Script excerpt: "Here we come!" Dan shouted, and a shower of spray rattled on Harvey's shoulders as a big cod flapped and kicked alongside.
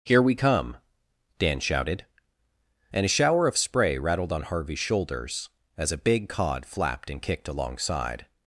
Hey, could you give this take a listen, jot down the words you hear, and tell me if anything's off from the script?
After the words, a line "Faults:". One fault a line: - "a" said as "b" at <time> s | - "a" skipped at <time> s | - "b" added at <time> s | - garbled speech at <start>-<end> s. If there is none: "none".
"Here we come!" Dan shouted, and a shower of spray rattled on Harvey's shoulders as a big cod flapped and kicked alongside.
Faults:
none